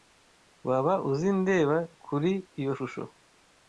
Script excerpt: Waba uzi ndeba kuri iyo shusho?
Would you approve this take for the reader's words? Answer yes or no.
yes